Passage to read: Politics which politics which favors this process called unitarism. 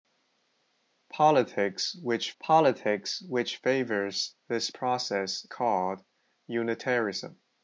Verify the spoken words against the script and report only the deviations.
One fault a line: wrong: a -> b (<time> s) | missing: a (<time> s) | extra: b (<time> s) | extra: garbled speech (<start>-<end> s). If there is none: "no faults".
no faults